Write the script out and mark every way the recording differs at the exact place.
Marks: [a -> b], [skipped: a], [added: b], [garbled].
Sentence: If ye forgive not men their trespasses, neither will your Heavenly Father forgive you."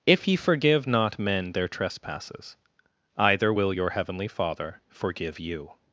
If ye forgive not men their trespasses, [neither -> either] will your Heavenly Father forgive you."